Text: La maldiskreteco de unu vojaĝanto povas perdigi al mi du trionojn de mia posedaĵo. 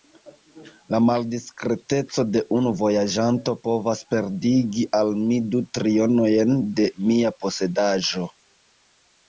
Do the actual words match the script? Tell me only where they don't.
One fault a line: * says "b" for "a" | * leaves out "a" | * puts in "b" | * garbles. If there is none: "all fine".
all fine